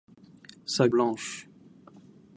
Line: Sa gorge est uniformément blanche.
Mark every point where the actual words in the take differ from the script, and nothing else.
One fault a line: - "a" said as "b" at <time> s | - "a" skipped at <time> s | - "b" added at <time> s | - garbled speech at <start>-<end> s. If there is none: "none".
- "gorge est uniformément" skipped at 0.9 s